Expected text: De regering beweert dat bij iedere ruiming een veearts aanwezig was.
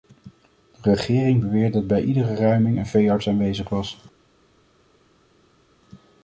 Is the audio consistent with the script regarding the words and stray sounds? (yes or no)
yes